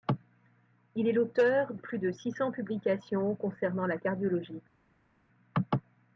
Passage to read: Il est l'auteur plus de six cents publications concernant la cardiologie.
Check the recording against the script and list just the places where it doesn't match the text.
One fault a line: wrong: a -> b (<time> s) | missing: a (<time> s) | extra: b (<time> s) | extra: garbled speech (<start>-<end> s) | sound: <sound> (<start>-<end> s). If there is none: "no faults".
no faults